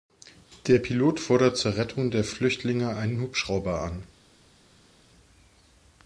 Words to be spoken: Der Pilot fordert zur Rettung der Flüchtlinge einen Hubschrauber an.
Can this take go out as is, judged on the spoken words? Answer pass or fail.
pass